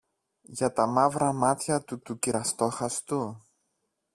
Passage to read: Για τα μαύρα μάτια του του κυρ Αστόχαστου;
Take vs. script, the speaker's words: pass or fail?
pass